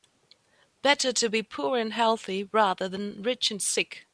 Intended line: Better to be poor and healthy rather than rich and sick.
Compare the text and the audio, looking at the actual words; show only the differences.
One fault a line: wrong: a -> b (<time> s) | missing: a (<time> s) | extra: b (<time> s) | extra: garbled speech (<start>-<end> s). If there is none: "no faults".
no faults